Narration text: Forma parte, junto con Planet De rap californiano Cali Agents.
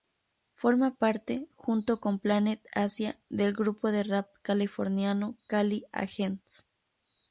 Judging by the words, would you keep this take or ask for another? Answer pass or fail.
fail